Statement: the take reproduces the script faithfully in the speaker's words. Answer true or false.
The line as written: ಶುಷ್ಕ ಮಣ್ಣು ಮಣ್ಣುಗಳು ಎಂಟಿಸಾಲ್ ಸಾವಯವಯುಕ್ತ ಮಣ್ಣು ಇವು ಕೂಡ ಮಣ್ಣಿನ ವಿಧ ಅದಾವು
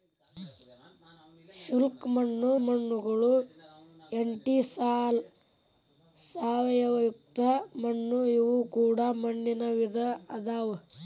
true